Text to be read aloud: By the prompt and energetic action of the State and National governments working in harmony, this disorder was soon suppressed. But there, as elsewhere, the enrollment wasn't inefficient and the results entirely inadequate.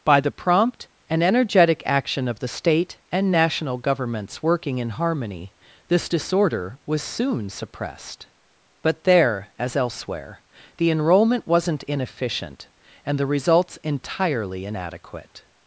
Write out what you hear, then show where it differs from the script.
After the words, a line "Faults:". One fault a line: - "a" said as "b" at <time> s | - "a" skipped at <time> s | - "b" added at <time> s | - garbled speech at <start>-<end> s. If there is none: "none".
By the prompt and energetic action of the State and National governments working in harmony, this disorder was soon suppressed. But there, as elsewhere, the enrollment wasn't inefficient and the results entirely inadequate.
Faults:
none